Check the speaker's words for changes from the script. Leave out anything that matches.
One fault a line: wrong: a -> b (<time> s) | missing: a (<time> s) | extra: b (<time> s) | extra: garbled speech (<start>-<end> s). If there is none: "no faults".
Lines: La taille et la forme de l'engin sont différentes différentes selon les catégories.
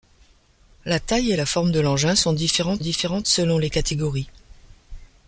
no faults